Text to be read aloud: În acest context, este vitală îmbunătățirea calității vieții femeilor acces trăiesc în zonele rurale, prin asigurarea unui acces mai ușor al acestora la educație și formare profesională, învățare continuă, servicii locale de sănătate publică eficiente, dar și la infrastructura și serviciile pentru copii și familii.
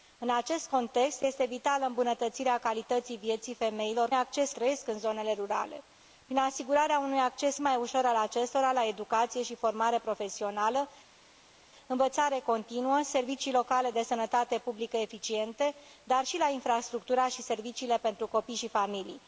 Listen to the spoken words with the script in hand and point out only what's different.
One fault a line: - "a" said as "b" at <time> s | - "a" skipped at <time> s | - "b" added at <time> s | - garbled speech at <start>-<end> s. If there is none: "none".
none